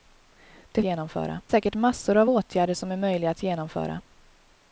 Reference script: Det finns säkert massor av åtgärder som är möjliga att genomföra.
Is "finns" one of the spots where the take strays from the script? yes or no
yes